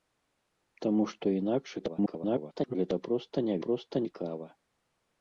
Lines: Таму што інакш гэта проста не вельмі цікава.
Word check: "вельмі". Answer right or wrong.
wrong